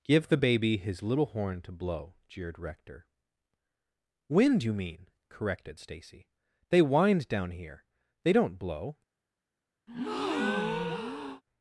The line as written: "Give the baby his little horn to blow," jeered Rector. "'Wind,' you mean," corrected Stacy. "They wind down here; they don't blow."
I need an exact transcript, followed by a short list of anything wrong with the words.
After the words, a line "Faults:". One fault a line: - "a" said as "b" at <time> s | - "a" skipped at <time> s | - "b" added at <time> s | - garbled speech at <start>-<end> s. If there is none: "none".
"Give the baby his little horn to blow," jeered Rector. "'Wind,' you mean," corrected Stacy. "They wind down here; they don't blow."
Faults:
none